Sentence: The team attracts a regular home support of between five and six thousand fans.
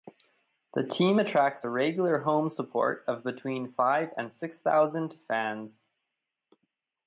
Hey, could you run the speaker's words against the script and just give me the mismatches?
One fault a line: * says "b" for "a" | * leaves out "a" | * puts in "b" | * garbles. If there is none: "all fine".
all fine